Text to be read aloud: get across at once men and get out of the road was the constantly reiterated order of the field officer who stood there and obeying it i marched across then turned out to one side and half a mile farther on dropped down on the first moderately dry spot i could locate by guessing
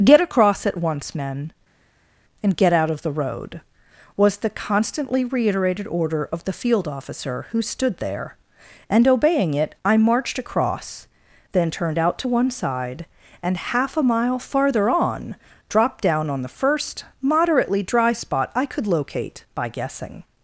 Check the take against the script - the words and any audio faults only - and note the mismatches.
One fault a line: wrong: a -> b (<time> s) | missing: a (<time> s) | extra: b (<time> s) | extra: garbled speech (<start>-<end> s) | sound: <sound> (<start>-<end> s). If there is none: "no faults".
no faults